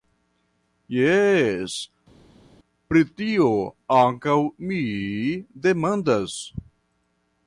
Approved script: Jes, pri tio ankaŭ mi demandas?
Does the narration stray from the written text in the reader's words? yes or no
no